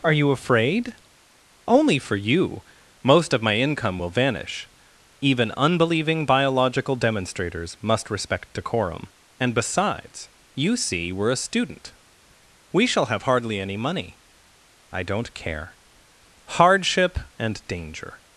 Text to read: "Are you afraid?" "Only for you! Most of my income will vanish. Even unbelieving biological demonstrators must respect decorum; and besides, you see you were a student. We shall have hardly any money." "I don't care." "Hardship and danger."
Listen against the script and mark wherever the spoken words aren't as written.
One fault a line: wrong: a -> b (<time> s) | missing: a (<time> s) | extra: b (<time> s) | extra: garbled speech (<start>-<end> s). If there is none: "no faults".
missing: you (11.1 s)